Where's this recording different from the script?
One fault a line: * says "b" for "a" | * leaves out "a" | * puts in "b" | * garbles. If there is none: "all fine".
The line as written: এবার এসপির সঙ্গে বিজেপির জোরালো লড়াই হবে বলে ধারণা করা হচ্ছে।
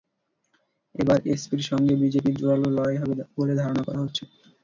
all fine